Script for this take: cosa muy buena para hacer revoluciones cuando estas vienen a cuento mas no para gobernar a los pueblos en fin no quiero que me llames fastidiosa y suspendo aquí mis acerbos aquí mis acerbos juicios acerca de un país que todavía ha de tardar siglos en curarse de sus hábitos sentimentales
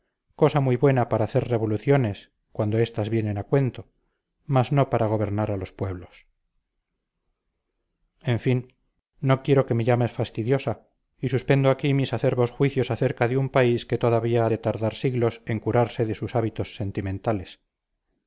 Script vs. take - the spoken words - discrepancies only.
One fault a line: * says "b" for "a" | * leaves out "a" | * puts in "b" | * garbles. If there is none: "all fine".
* leaves out "aquí mis acerbos"